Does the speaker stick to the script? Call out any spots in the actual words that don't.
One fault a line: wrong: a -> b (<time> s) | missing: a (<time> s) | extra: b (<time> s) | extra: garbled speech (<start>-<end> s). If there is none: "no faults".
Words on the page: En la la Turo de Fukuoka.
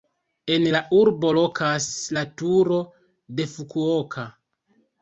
extra: urbo lokas (1.0 s)